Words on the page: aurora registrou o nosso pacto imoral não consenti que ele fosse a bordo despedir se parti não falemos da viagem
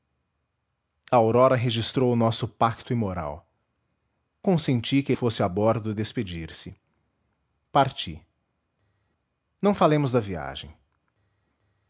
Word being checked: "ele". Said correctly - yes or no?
no